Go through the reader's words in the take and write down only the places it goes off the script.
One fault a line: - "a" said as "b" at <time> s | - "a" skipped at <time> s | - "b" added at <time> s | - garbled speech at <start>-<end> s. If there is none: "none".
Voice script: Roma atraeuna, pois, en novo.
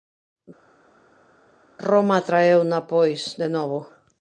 - "en" said as "de" at 3.4 s